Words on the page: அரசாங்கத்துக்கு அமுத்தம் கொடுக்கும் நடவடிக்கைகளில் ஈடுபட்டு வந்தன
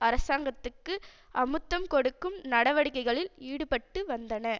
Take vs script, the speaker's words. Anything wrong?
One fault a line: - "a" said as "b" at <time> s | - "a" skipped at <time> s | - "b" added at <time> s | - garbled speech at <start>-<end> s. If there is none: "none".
none